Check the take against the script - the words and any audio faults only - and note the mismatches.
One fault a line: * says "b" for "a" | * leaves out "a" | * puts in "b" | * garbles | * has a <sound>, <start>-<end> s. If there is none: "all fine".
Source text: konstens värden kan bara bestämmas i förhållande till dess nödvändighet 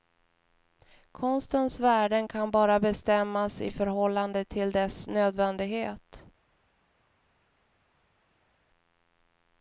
all fine